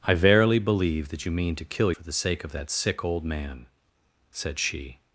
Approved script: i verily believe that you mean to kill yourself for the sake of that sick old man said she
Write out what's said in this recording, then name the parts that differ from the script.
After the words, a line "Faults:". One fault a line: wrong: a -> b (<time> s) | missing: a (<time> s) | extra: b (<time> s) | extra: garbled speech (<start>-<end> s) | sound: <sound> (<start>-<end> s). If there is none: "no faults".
i verily believe that you mean to kill for the sake of that sick old man said she
Faults:
missing: yourself (1.9 s)